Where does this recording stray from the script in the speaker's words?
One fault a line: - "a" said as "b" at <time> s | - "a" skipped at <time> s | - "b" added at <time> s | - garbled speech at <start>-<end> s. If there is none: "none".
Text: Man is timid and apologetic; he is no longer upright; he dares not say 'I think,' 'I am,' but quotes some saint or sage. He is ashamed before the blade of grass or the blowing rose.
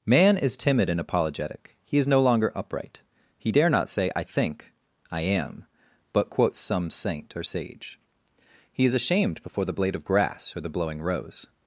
- "dares" said as "dare" at 3.5 s